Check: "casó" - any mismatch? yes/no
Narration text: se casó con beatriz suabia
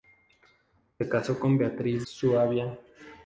no